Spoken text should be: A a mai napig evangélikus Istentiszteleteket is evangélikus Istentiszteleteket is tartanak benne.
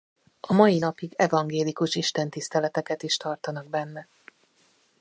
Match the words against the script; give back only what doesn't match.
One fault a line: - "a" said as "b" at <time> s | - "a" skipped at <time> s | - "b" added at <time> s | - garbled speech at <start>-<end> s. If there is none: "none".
- "a" skipped at 0.5 s
- "evangélikus Istentiszteleteket is" skipped at 3.2 s